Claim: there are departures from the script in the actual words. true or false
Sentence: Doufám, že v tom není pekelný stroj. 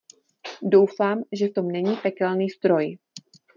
false